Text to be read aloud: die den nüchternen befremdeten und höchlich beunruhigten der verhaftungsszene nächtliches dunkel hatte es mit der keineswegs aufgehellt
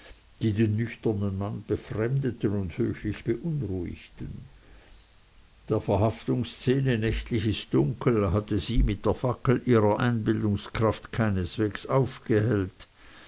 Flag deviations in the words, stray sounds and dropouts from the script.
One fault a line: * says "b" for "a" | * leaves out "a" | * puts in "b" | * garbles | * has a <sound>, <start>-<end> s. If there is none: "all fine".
* puts in "mann"
* says "sie" for "es"
* puts in "fackel ihrer einbildungskraft"